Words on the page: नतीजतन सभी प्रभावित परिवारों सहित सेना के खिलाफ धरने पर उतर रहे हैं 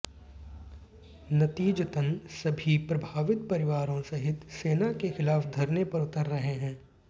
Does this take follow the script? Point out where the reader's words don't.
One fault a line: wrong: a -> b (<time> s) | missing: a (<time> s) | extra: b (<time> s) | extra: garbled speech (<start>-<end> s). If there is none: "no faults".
no faults